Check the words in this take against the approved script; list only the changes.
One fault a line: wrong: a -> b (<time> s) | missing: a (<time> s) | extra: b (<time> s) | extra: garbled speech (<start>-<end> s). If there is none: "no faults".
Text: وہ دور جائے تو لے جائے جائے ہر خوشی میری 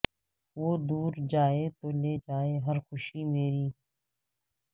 missing: جائے (2.6 s)